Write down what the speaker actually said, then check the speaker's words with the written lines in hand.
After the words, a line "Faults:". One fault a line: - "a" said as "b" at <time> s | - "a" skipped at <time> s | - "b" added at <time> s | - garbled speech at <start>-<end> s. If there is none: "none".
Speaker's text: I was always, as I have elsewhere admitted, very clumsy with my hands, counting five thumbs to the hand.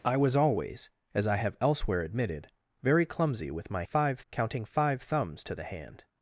I was always, as I have elsewhere admitted, very clumsy with my five, counting five thumbs to the hand.
Faults:
- "hands" said as "five" at 3.8 s